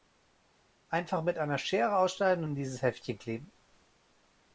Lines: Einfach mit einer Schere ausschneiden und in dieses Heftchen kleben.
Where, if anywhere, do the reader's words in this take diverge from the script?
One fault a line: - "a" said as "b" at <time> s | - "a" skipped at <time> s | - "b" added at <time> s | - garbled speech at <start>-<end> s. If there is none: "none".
none